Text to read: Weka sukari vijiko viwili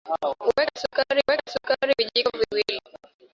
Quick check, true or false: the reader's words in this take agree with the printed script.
false